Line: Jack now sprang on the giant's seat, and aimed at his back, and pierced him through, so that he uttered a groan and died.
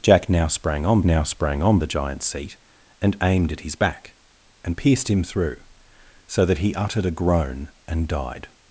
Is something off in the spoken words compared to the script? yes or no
yes